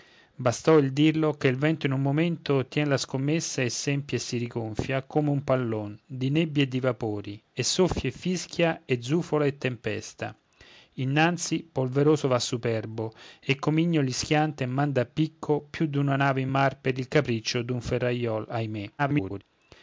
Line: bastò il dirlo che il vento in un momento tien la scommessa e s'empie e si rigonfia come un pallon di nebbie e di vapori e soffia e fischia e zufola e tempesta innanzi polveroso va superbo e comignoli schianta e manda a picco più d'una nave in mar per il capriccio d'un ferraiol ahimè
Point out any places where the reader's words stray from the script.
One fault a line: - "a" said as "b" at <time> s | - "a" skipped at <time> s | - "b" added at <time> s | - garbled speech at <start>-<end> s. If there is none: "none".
- garbled speech at 19.0-19.4 s